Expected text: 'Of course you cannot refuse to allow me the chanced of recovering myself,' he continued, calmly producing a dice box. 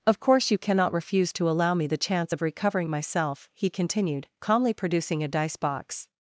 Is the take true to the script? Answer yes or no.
no